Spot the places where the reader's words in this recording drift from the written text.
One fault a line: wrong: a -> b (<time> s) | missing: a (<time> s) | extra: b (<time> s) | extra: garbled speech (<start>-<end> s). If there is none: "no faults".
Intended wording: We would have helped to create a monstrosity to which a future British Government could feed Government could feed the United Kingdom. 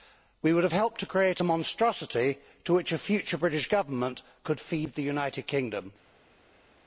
missing: Government could feed (4.9 s)